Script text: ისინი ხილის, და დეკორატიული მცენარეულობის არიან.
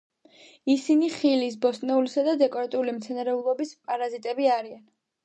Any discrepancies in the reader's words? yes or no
yes